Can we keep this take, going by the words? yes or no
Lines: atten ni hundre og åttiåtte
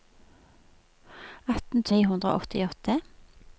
yes